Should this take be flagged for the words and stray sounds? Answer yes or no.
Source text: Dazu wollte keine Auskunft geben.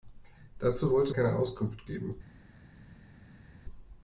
no